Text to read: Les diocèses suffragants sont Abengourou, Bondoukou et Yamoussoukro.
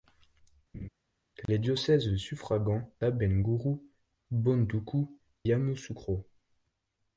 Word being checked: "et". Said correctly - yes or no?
no